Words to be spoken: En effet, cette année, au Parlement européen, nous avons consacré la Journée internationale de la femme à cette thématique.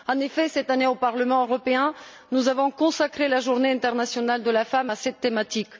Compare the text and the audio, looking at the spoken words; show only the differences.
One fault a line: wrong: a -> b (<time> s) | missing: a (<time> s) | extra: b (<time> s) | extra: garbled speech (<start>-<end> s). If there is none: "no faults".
no faults